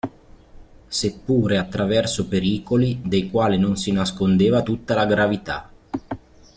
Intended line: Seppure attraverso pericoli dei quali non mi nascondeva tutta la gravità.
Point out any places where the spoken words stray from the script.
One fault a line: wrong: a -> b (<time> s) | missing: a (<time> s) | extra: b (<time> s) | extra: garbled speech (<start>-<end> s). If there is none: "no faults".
wrong: mi -> si (3.8 s)